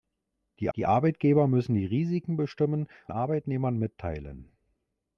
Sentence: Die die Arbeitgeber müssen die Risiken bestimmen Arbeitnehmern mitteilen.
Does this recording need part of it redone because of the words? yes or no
no